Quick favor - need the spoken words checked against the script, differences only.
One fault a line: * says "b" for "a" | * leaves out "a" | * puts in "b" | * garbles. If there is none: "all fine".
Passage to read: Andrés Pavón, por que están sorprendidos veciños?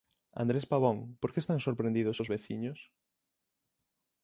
* puts in "os"